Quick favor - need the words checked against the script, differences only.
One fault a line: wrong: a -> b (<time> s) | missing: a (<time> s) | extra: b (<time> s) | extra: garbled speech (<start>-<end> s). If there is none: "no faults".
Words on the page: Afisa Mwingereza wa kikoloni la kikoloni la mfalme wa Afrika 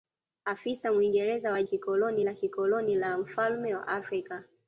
no faults